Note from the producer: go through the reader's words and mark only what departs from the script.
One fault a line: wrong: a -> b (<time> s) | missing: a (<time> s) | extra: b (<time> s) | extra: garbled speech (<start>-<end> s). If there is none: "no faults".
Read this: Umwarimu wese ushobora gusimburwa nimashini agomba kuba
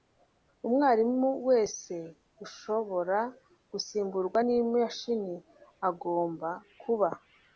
no faults